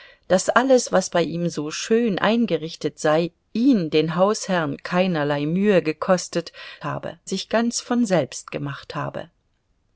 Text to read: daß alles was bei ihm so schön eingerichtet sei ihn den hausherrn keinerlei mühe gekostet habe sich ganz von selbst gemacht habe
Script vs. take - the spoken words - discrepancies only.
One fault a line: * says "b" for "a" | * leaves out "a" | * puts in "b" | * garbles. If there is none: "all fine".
all fine